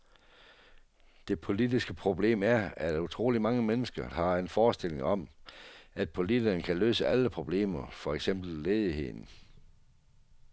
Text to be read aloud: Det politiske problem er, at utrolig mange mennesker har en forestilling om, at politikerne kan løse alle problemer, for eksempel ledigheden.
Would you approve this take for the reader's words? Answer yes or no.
yes